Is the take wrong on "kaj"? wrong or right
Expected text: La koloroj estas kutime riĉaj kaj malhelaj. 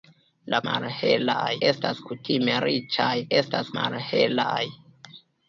wrong